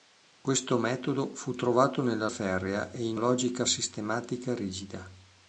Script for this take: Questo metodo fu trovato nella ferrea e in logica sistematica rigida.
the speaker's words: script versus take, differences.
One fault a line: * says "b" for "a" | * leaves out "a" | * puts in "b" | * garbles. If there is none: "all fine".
all fine